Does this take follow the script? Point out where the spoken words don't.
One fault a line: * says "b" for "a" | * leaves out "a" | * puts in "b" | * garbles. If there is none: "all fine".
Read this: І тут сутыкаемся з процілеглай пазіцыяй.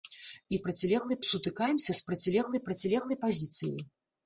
* says "процілеглай" for "тут"
* puts in "процілеглай"